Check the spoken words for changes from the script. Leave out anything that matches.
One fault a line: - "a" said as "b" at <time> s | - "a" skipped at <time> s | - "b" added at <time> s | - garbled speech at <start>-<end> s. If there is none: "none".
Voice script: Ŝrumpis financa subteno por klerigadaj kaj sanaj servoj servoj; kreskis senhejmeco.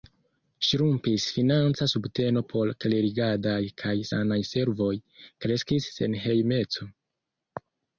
- "servoj" skipped at 5.0 s